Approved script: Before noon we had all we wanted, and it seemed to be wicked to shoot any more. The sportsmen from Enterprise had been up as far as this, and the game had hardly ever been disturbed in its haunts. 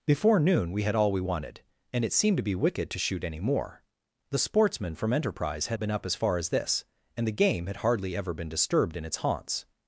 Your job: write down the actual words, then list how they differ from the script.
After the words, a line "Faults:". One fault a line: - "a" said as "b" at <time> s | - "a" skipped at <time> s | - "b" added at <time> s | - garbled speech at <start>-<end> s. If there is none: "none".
Before noon we had all we wanted, and it seemed to be wicked to shoot any more. The sportsmen from Enterprise had been up as far as this, and the game had hardly ever been disturbed in its haunts.
Faults:
none